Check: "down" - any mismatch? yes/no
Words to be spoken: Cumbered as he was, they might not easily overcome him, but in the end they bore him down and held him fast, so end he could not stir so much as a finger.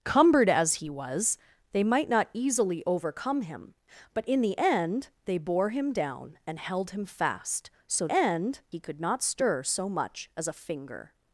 no